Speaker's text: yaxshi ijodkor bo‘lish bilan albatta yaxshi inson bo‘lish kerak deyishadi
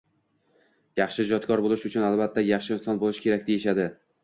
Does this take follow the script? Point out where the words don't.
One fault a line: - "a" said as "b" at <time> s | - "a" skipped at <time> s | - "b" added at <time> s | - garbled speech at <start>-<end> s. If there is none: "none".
- "bilan" said as "uchun" at 1.9 s